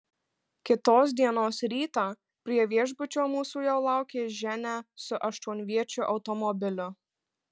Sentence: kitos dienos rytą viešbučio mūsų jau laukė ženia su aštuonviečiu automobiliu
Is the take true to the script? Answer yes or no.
no